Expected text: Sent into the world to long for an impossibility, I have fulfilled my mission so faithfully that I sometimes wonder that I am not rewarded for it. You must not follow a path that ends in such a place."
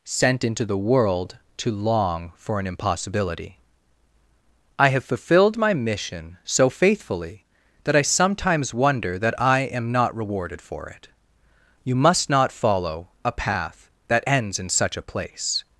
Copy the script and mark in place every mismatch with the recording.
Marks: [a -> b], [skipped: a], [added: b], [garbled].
Sent into the world to long for an impossibility, I have fulfilled my mission so faithfully that I sometimes wonder that I am not rewarded for it. You must not follow a path that ends in such a place."